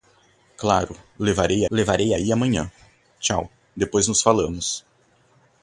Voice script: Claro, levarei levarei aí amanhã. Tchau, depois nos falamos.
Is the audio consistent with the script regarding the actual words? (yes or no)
yes